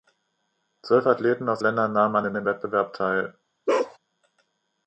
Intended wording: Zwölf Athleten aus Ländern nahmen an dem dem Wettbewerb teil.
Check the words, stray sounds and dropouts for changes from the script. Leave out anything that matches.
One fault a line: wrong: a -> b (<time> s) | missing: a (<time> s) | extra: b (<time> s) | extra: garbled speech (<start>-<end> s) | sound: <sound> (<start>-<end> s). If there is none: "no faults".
sound: bark (3.7-4.0 s)